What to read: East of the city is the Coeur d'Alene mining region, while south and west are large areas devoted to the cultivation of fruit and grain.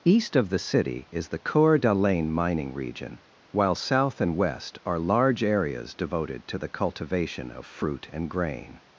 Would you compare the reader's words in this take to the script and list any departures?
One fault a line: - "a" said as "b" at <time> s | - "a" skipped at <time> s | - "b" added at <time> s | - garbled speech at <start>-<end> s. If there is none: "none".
none